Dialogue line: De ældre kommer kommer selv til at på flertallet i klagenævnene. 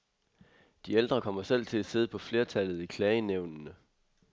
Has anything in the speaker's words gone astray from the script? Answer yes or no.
yes